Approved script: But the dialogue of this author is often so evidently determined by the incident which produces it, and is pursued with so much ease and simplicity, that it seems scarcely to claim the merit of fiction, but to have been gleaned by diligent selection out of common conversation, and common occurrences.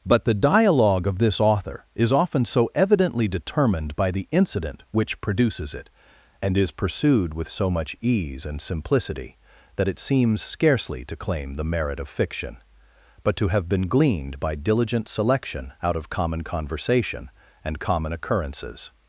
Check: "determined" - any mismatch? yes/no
no